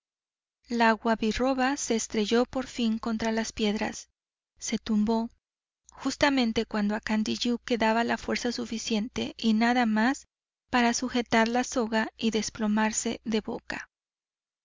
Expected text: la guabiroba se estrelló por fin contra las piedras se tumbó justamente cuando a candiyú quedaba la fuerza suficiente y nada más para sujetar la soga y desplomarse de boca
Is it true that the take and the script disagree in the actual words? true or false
false